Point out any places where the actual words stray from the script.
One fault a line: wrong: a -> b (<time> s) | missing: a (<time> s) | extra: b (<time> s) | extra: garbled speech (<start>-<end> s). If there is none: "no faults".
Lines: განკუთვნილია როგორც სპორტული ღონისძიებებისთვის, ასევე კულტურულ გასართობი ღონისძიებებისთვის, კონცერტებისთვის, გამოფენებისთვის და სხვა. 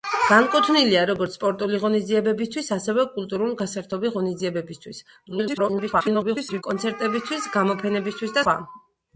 extra: garbled speech (5.3-6.6 s)
missing: და (8.4 s)